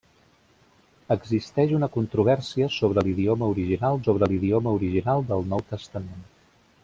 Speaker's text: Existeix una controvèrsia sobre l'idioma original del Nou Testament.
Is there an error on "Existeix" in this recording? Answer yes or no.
no